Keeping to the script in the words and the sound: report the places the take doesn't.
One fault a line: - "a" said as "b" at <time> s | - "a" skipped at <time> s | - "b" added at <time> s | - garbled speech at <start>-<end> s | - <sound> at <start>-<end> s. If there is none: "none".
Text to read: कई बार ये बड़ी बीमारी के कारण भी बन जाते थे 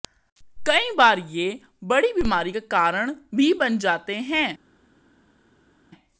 - "के" said as "का" at 2.5 s
- "थे" said as "हैं" at 4.3 s